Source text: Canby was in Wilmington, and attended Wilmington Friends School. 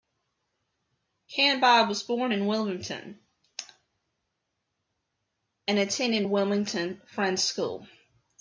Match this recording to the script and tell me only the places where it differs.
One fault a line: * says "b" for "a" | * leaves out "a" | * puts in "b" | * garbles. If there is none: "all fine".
* puts in "born"